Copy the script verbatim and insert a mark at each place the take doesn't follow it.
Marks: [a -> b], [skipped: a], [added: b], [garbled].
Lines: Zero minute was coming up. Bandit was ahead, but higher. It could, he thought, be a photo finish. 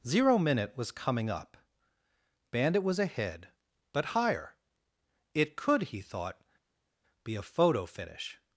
Zero minute was coming up. Bandit was ahead, but higher. It could, he thought, be a photo finish.